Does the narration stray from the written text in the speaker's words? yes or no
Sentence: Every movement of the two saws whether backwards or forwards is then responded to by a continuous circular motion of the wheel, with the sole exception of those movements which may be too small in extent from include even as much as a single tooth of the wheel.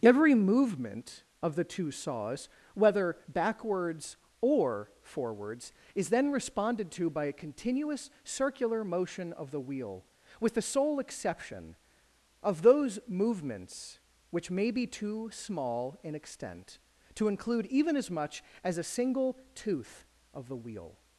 yes